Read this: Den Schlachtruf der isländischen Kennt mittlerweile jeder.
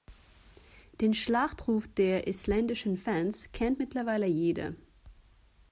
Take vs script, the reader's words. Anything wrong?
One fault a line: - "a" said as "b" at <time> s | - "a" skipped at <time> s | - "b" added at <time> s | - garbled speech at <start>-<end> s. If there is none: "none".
- "Fans" added at 3.0 s